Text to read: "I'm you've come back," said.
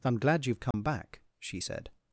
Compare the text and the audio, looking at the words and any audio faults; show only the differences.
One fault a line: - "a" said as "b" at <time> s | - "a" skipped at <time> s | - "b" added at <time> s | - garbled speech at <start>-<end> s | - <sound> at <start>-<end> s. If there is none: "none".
- "glad" added at 0.2 s
- dropout at 0.7-0.7 s
- "she" added at 1.4 s